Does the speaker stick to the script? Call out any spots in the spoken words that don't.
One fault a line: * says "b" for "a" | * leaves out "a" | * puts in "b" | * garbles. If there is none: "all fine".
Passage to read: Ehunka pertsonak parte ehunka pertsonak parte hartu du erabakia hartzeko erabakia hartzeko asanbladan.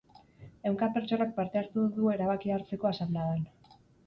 * leaves out "ehunka pertsonak parte"
* leaves out "erabakia hartzeko"